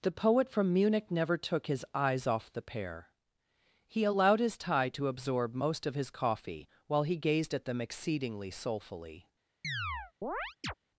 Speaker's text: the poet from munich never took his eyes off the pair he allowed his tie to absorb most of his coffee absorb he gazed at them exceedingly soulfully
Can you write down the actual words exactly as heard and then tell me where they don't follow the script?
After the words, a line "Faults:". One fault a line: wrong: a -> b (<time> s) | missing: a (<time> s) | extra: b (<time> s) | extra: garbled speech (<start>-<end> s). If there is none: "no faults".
the poet from munich never took his eyes off the pair he allowed his tie to absorb most of his coffee while he gazed at them exceedingly soulfully
Faults:
wrong: absorb -> while (6.9 s)